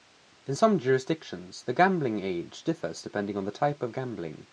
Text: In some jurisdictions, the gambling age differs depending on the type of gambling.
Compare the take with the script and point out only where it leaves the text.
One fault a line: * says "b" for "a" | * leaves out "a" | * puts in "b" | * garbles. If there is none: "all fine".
all fine